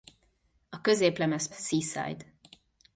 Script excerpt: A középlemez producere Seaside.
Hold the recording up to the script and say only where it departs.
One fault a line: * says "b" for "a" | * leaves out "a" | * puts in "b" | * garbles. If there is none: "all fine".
* leaves out "producere"